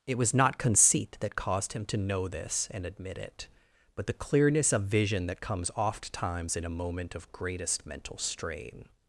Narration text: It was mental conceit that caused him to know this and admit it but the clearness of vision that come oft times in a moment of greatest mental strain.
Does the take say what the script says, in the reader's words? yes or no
no